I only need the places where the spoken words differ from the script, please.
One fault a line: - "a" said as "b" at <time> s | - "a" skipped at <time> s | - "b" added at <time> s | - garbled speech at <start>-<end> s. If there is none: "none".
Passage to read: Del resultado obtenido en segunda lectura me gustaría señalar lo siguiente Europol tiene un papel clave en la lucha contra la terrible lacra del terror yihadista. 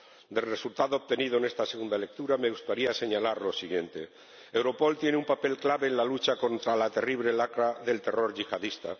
- "esta" added at 1.4 s